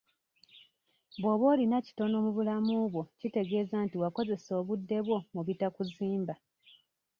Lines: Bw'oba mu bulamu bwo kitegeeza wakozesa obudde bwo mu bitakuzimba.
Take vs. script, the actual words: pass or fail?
fail